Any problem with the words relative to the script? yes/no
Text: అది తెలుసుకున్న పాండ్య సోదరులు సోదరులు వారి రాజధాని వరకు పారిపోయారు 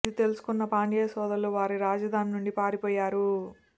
yes